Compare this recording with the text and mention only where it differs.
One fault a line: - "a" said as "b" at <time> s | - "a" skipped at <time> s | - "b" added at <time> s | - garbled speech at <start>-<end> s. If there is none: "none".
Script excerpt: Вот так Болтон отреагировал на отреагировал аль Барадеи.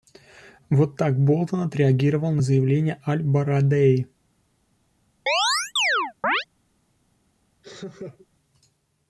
- "отреагировал" said as "заявление" at 2.4 s